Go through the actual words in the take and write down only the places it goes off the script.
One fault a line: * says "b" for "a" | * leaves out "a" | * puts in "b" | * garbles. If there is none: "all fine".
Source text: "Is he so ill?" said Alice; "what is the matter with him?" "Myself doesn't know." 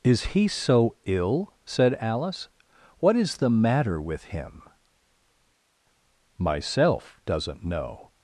all fine